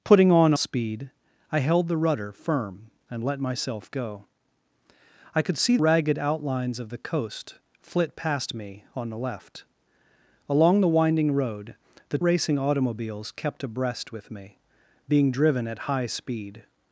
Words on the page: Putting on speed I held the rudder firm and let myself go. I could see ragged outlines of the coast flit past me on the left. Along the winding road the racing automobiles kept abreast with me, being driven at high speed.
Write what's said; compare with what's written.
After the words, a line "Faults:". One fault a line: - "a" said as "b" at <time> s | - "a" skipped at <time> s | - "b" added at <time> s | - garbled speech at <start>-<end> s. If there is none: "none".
Putting on speed I held the rudder firm and let myself go. I could see ragged outlines of the coast flit past me on the left. Along the winding road the racing automobiles kept abreast with me, being driven at high speed.
Faults:
none